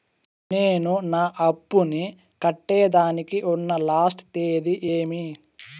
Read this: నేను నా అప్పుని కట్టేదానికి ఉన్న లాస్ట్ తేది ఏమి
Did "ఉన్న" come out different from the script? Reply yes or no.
no